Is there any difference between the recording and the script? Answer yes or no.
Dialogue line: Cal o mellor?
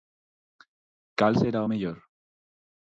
yes